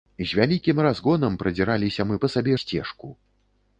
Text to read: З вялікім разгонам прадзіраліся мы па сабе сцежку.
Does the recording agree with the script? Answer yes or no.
yes